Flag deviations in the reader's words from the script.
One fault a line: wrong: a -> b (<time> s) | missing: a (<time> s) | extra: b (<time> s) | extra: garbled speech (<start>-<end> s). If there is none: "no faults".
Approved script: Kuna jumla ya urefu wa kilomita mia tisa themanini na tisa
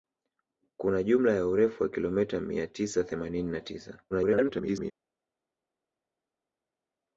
extra: garbled speech (4.1-4.9 s)